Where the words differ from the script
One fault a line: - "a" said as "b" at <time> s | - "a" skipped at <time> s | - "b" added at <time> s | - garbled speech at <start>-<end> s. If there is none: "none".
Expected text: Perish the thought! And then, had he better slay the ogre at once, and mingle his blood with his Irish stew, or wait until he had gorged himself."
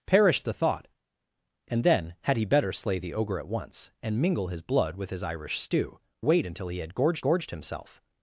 - "or" skipped at 6.0 s
- "gorged" added at 7.2 s